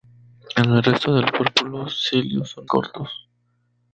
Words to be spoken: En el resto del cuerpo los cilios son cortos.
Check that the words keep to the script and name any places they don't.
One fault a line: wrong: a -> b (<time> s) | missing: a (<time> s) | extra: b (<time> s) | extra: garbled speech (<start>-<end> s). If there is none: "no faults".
no faults